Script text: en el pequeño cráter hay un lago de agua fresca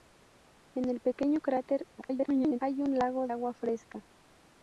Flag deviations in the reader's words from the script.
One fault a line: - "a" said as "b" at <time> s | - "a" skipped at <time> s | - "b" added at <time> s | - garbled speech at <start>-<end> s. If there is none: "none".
- garbled speech at 2.0-2.6 s
- "de" skipped at 3.3 s